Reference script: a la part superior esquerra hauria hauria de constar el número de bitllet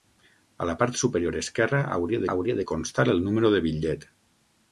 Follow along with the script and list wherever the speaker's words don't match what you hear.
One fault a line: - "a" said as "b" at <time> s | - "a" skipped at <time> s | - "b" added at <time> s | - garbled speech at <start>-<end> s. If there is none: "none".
none